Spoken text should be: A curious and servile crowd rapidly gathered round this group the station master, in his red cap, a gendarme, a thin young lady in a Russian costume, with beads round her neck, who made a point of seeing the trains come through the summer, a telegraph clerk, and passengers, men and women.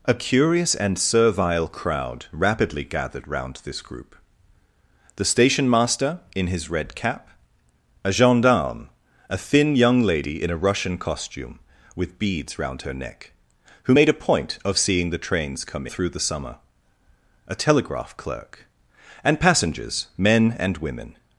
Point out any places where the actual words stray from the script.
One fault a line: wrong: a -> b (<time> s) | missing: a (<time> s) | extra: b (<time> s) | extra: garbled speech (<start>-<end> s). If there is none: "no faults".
no faults